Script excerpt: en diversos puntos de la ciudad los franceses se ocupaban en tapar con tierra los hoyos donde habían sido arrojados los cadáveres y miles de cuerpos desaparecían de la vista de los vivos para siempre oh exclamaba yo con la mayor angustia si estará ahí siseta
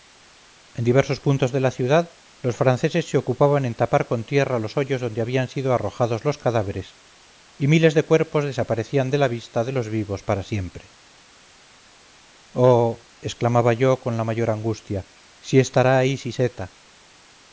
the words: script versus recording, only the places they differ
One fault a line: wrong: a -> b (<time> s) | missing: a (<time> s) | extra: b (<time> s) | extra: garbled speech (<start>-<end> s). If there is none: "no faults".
no faults